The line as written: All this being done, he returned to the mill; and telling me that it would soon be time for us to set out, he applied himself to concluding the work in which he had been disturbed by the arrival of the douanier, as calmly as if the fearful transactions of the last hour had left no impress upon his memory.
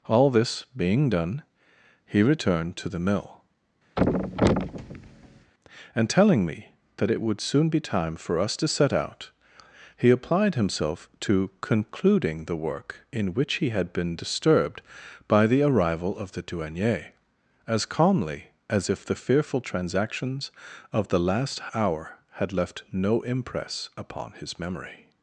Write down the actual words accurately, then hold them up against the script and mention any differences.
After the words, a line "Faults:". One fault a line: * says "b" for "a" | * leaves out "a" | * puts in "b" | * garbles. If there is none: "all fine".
All this being done, he returned to the mill; and telling me that it would soon be time for us to set out, he applied himself to concluding the work in which he had been disturbed by the arrival of the douanier, as calmly as if the fearful transactions of the last hour had left no impress upon his memory.
Faults:
all fine